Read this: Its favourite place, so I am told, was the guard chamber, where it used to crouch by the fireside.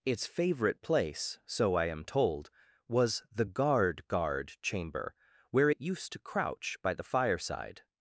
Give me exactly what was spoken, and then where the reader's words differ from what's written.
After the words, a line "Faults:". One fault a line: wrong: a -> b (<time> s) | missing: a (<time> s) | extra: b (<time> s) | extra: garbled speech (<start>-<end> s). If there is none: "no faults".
Its favourite place, so I am told, was the guard guard chamber, where it used to crouch by the fireside.
Faults:
extra: guard (4.1 s)